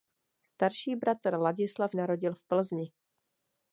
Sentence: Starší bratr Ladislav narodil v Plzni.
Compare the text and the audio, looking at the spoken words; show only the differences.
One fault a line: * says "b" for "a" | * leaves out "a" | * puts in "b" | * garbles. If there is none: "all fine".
all fine